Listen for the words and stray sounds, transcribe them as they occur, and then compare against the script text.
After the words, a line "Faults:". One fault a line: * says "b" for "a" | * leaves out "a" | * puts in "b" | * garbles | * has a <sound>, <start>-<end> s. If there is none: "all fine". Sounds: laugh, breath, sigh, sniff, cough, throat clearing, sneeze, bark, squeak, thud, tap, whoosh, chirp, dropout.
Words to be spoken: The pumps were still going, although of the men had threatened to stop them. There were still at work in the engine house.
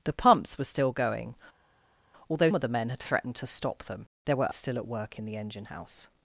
The pumps were still going, although of the men had threatened to stop them. There were still at work in the engine house.
Faults:
all fine